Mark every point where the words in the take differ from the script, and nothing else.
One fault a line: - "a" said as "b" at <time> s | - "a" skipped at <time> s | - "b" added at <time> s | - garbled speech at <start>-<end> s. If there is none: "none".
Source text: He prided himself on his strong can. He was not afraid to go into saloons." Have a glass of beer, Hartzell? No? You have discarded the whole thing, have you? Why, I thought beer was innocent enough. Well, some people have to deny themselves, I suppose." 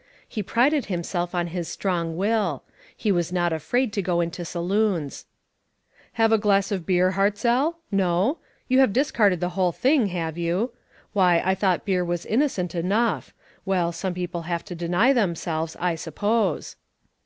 - "can" said as "will" at 2.2 s